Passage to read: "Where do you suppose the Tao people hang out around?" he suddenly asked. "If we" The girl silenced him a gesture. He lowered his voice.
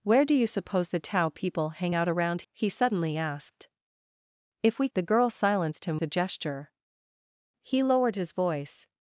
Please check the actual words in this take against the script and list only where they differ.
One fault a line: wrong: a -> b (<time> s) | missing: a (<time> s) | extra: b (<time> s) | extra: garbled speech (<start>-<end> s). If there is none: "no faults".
no faults